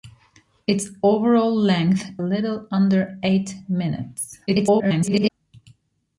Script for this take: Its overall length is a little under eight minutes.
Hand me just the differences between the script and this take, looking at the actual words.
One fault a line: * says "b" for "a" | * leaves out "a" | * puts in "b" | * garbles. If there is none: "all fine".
* leaves out "is a"
* garbles